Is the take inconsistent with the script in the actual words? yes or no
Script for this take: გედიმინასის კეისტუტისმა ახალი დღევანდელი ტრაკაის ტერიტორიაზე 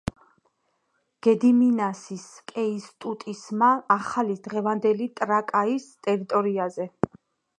no